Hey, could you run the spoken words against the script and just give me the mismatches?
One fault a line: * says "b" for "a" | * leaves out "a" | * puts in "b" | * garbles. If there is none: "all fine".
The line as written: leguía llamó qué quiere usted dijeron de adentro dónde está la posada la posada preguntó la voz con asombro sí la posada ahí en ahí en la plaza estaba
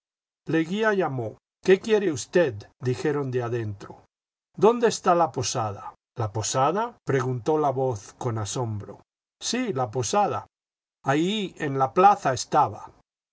* leaves out "ahí en"